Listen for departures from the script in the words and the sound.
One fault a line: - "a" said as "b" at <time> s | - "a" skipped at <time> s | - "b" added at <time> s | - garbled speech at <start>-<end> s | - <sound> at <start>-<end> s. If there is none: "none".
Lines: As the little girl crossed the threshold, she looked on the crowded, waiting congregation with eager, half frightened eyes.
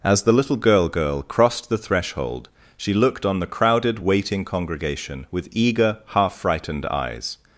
- "girl" added at 0.9 s